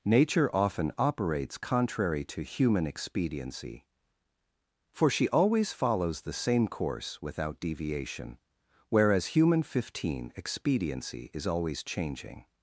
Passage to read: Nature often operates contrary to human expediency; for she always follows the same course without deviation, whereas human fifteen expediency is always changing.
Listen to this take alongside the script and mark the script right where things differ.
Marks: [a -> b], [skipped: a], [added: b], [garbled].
Nature often operates contrary to human expediency; for she always follows the same course without deviation, whereas human fifteen expediency is always changing.